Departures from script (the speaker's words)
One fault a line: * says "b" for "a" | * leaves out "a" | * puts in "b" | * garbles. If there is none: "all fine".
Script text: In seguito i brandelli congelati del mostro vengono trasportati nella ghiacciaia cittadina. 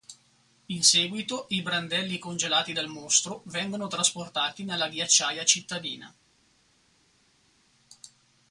all fine